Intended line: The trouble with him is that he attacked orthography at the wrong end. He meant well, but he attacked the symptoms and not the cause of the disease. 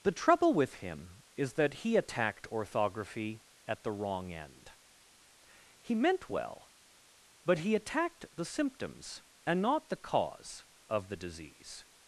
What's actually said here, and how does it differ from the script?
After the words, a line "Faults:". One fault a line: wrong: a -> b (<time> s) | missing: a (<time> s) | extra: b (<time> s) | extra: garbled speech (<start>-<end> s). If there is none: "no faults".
The trouble with him is that he attacked orthography at the wrong end. He meant well, but he attacked the symptoms and not the cause of the disease.
Faults:
no faults